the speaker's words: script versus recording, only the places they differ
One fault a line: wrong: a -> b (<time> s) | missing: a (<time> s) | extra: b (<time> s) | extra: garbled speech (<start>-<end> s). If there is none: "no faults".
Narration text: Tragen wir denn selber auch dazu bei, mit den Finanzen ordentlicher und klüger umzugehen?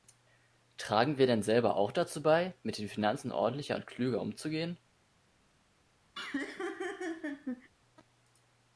no faults